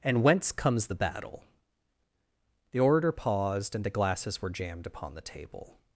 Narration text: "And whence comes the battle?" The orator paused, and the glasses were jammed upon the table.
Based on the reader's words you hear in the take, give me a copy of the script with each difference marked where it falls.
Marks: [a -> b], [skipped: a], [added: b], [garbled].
"And whence comes the battle?" The orator paused, and the glasses were jammed upon the table.